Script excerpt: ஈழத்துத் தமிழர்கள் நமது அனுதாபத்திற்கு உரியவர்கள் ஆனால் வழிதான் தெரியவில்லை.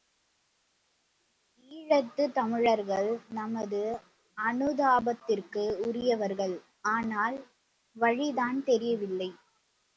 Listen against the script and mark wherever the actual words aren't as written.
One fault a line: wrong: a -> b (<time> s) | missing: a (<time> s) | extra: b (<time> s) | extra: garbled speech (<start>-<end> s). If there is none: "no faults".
no faults